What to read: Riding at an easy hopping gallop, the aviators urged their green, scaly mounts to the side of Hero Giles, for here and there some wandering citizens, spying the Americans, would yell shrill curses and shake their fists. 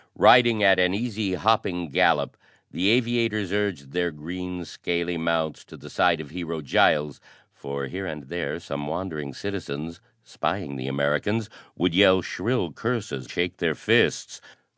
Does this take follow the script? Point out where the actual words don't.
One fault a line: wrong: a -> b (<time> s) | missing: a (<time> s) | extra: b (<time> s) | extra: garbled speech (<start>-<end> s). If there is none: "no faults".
missing: and (13.3 s)